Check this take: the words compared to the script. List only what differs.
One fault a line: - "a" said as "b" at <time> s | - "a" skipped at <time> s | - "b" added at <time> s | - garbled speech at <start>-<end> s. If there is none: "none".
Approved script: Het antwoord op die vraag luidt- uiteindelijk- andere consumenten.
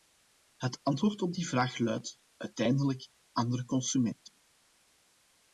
none